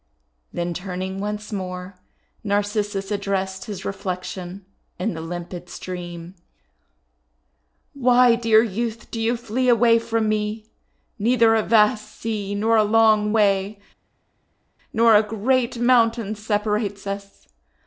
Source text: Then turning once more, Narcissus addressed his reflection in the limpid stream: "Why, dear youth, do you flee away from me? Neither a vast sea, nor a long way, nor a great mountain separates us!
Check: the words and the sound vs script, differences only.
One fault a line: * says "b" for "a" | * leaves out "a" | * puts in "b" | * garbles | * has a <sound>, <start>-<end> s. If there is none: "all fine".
all fine